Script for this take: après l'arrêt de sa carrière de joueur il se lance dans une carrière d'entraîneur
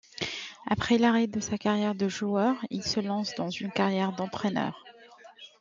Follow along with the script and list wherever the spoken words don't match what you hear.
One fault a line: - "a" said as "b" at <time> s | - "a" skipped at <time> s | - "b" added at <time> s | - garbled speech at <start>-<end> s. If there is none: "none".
none